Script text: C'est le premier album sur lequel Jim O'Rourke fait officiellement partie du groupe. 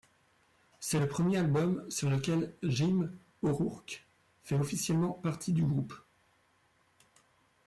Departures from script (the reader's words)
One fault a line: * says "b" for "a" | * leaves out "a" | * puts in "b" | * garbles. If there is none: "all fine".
all fine